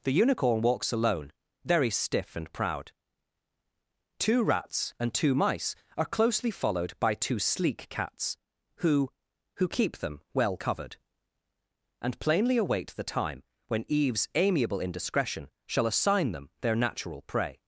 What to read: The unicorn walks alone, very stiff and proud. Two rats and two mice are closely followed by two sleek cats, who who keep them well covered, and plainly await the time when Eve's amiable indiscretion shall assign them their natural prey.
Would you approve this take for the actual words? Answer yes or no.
yes